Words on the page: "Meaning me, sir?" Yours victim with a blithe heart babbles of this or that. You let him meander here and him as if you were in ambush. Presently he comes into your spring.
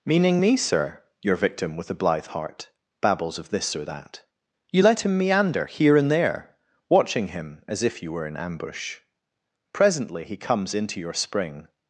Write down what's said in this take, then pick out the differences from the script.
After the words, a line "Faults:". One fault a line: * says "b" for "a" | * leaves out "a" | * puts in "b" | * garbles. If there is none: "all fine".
"Meaning me, sir?" Your victim with a blithe heart babbles of this or that. You let him meander here and there, watching him as if you were in ambush. Presently he comes into your spring.
Faults:
* says "Your" for "Yours"
* puts in "there watching"